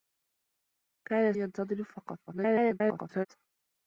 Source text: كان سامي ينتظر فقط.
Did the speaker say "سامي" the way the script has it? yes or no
no